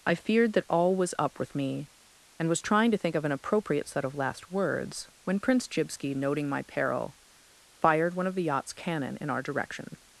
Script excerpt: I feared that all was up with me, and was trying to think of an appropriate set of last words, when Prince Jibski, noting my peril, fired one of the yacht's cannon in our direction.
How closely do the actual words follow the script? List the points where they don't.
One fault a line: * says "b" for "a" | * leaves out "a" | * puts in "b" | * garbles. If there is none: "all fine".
all fine